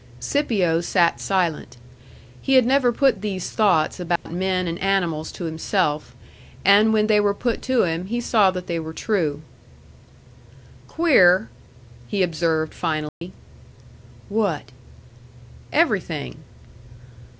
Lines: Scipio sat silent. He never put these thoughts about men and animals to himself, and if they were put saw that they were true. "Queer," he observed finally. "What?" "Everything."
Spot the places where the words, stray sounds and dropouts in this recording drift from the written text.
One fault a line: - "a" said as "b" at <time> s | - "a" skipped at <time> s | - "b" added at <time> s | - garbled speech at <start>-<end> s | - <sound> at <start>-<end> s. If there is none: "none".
- "had" added at 2.5 s
- dropout at 4.2-4.3 s
- "if" said as "when" at 6.9 s
- "to him he" added at 7.7 s
- dropout at 13.1-13.2 s